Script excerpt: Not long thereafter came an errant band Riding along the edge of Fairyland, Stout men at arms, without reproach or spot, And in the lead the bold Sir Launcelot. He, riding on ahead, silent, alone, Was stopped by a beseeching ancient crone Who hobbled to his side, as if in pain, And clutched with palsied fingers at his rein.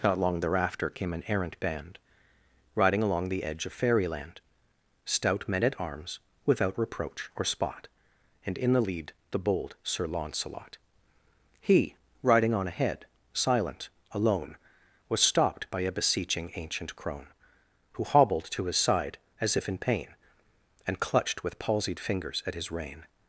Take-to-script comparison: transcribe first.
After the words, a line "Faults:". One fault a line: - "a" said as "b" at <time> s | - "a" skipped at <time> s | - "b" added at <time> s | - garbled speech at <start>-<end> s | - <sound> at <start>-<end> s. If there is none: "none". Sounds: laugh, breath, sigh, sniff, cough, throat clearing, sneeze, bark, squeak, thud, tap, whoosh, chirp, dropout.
Not long thereafter came an errant band Riding along the edge of Fairyland, Stout men at arms, without reproach or spot, And in the lead the bold Sir Launcelot. He, riding on ahead, silent, alone, Was stopped by a beseeching ancient crone Who hobbled to his side, as if in pain, And clutched with palsied fingers at his rein.
Faults:
none